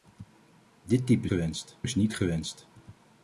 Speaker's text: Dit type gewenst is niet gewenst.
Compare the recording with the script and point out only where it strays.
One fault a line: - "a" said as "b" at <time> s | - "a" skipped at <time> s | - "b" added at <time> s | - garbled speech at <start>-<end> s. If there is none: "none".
none